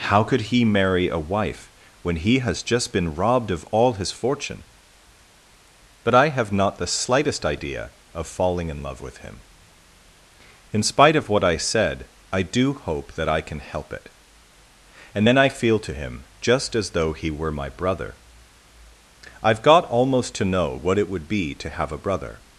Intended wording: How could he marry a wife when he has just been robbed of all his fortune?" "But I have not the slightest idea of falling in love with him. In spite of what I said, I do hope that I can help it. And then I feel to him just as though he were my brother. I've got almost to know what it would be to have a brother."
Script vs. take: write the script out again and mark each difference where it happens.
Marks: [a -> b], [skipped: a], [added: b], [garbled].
How could he marry a wife when he has just been robbed of all his fortune?" "But I have not the slightest idea of falling in love with him. In spite of what I said, I do hope that I can help it. And then I feel to him just as though he were my brother. I've got almost to know what it would be to have a brother."